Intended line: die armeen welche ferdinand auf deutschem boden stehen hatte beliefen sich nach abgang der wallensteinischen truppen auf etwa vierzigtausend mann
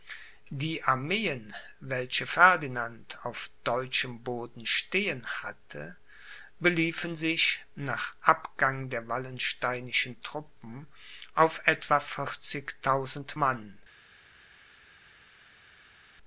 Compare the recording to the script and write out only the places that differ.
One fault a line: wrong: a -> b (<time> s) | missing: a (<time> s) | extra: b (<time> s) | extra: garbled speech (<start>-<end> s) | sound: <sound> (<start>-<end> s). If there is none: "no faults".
no faults